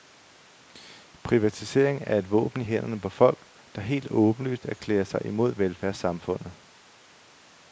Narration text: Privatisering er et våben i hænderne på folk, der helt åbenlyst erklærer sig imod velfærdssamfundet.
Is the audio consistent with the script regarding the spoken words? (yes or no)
yes